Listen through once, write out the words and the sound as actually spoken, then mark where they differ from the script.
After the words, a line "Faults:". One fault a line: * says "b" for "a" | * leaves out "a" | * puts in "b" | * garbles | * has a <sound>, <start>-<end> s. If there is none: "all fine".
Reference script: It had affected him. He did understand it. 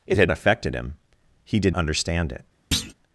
It had affected him. He did understand it.
Faults:
* has a thud, 2.7-2.9 s